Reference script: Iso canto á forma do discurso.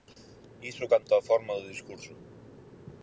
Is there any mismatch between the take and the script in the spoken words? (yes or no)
no